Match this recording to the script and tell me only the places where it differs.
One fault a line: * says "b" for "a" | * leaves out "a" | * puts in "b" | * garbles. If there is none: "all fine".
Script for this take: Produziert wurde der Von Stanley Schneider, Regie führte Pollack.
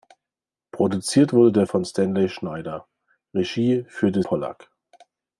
all fine